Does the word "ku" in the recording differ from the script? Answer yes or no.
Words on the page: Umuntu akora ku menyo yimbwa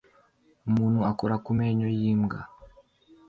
no